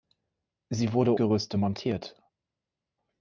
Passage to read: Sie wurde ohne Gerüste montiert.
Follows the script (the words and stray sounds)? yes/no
no